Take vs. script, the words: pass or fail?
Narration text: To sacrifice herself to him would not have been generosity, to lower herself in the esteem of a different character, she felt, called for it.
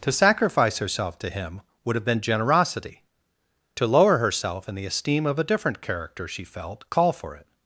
fail